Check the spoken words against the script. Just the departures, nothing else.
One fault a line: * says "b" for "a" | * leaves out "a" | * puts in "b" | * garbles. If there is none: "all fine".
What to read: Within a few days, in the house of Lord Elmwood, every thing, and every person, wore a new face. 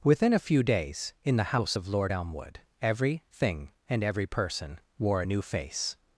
all fine